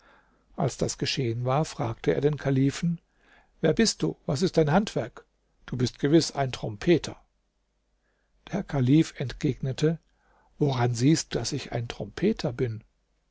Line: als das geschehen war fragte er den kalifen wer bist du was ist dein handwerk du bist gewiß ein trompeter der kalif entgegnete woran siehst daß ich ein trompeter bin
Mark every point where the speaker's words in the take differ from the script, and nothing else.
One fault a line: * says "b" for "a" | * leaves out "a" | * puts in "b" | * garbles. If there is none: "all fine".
all fine